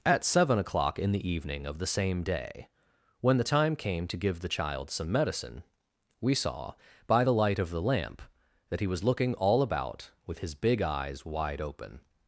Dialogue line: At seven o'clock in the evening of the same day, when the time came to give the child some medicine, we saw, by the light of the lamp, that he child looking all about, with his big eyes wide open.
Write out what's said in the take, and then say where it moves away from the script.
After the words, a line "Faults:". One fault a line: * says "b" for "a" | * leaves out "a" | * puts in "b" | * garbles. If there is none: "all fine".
At seven o'clock in the evening of the same day, when the time came to give the child some medicine, we saw, by the light of the lamp, that he was looking all about, with his big eyes wide open.
Faults:
* says "was" for "child"